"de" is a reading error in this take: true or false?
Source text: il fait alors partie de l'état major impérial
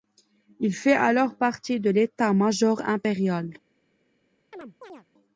false